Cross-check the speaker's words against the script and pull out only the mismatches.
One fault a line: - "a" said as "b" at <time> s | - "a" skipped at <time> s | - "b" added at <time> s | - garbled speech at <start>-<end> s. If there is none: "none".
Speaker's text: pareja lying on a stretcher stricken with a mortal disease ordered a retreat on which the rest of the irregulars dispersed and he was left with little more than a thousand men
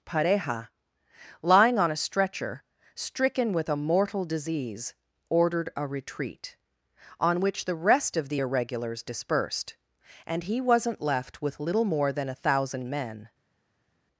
- "was" said as "wasn't" at 10.6 s